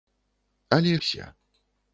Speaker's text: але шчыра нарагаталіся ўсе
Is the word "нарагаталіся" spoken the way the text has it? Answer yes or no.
no